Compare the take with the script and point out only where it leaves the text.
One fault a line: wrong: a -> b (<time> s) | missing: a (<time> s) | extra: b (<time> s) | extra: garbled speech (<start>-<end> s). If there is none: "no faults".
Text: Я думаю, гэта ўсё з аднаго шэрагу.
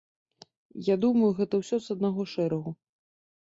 no faults